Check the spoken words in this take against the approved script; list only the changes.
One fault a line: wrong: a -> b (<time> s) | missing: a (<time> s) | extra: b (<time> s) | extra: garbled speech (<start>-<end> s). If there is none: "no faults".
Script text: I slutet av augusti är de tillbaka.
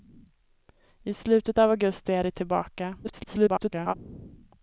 extra: garbled speech (3.0-3.9 s)